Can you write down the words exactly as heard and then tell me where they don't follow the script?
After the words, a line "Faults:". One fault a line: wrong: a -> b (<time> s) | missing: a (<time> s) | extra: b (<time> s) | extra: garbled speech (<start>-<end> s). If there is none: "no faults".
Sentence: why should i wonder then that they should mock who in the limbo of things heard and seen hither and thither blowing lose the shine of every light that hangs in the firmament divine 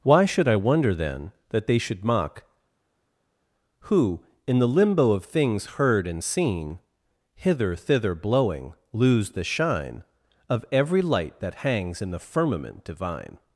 why should i wonder then that they should mock who in the limbo of things heard and seen hither thither blowing lose the shine of every light that hangs in the firmament divine
Faults:
missing: and (7.7 s)